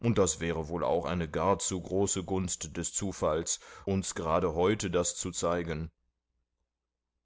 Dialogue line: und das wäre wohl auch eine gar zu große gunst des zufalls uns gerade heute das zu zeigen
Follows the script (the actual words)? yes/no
yes